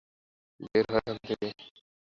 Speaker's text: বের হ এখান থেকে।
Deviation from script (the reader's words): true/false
false